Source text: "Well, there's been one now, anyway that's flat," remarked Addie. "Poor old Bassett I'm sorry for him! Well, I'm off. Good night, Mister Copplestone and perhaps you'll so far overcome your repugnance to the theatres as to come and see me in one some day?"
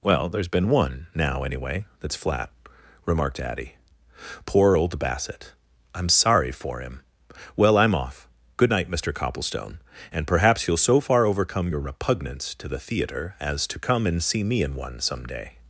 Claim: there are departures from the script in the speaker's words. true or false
true